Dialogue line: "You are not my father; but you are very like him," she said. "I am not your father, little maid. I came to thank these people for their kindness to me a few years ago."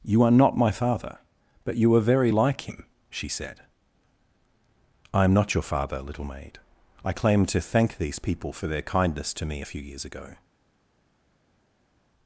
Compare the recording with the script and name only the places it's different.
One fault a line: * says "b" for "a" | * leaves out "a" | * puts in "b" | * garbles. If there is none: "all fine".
* says "claim" for "came"